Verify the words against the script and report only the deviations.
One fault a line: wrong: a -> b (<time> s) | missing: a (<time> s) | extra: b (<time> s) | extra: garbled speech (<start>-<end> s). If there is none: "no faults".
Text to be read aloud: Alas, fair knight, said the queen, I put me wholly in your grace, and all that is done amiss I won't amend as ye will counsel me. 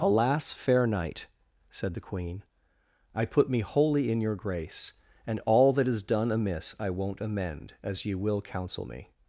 no faults